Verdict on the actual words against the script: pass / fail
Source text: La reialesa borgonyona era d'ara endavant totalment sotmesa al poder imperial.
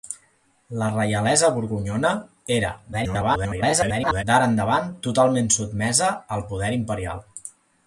fail